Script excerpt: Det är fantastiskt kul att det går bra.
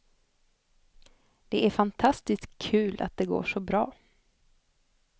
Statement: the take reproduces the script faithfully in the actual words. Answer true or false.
false